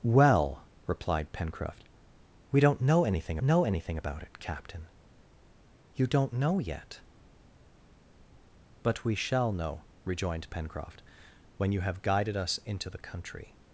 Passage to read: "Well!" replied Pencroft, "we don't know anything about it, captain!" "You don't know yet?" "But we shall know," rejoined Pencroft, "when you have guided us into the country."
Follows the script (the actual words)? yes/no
no